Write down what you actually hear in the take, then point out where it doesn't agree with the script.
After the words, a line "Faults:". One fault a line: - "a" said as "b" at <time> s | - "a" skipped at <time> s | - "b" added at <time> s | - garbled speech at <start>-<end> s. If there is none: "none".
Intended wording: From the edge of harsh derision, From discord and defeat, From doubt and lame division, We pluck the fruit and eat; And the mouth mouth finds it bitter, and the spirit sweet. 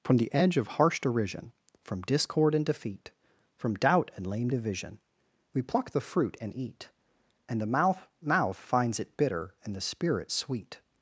From the edge of harsh derision, From discord and defeat, From doubt and lame division, We pluck the fruit and eat; And the mouth mouth finds it bitter, and the spirit sweet.
Faults:
none